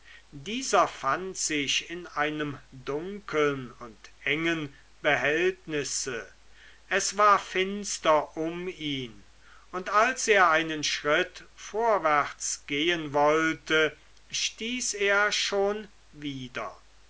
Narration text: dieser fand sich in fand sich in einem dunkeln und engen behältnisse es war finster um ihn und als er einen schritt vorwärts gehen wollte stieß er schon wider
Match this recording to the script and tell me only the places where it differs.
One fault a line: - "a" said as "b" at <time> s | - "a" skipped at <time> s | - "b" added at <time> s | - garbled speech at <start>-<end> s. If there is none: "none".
- "fand sich in" skipped at 2.1 s